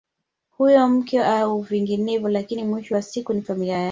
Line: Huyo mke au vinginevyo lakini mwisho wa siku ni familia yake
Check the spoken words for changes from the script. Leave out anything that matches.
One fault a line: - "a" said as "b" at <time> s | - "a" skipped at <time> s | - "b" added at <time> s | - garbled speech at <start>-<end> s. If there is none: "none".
none